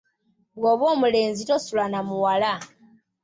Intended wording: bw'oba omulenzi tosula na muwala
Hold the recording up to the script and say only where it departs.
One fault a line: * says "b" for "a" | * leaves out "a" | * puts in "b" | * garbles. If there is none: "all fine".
all fine